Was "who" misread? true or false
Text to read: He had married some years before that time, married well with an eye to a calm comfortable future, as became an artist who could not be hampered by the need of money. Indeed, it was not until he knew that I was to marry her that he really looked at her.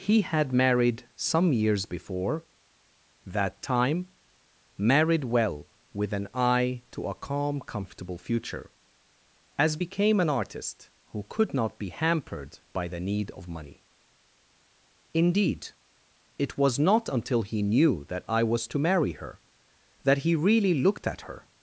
false